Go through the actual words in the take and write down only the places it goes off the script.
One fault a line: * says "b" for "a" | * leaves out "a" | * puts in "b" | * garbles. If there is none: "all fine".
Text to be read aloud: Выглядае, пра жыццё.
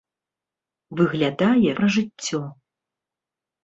all fine